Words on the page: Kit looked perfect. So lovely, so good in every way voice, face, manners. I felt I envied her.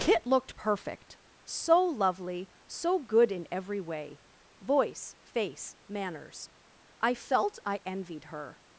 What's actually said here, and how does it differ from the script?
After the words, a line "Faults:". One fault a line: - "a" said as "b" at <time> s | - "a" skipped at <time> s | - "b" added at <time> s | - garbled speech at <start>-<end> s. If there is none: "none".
Kit looked perfect. So lovely, so good in every way voice, face, manners. I felt I envied her.
Faults:
none